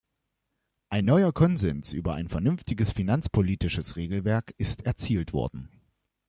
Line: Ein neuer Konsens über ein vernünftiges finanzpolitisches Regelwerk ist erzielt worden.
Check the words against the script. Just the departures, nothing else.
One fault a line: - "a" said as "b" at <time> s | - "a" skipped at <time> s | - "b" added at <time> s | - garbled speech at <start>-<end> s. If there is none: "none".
none